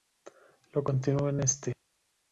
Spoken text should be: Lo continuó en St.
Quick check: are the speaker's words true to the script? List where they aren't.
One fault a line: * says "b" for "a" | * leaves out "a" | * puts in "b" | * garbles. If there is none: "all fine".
all fine